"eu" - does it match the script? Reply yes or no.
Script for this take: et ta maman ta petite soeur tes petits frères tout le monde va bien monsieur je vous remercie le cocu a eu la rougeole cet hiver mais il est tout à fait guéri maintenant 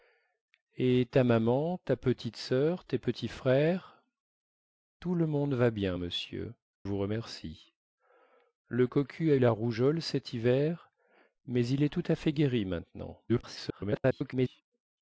no